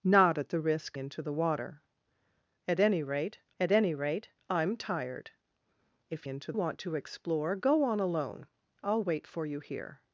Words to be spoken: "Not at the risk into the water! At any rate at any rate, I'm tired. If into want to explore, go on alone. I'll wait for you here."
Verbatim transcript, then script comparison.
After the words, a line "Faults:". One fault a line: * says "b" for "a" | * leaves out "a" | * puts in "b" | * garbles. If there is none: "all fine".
"Not at the risk into the water! At any rate at any rate, I'm tired. If into want to explore, go on alone. I'll wait for you here."
Faults:
all fine